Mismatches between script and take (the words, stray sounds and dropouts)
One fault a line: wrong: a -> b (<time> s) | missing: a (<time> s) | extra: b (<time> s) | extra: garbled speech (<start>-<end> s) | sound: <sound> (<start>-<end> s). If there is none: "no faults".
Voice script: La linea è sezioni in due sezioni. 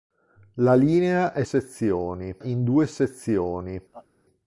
sound: laugh (3.9-4.1 s)